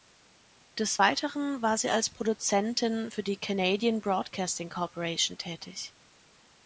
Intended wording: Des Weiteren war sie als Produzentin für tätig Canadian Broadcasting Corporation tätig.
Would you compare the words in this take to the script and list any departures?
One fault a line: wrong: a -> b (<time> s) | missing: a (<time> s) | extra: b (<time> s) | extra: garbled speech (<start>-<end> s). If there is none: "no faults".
wrong: tätig -> die (3.2 s)